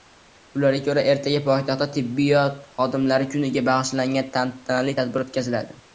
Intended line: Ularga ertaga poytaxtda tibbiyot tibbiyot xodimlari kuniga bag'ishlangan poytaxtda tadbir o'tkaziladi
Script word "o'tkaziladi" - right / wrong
right